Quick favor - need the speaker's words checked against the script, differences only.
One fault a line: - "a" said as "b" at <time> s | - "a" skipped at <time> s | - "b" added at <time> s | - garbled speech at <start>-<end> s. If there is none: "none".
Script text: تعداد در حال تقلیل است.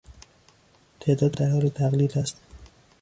none